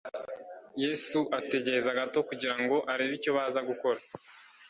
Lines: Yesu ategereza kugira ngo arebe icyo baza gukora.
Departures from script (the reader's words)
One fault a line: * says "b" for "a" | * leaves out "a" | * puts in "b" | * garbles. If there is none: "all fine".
* puts in "gato"